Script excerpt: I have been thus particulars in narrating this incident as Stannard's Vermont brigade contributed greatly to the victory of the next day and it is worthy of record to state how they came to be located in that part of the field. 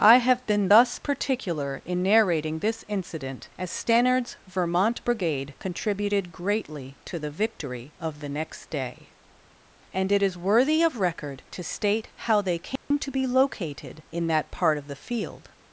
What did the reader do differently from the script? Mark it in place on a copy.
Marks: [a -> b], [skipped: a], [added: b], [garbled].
I have been thus [particulars -> particular] in narrating this incident as Stannard's Vermont brigade contributed greatly to the victory of the next day and it is worthy of record to state how they came to be located in that part of the field.